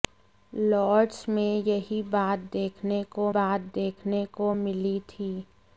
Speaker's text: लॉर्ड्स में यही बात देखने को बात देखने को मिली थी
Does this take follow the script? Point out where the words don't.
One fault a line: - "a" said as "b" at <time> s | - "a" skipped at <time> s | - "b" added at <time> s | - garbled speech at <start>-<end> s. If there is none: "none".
none